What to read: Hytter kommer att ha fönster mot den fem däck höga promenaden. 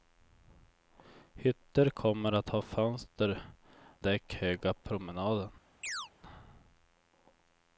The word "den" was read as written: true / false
false